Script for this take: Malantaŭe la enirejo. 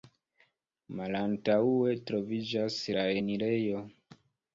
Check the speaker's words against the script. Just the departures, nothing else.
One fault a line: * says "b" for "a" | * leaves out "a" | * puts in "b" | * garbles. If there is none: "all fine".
* puts in "troviĝas"